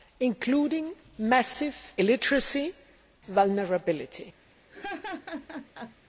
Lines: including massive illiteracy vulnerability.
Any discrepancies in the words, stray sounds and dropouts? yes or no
yes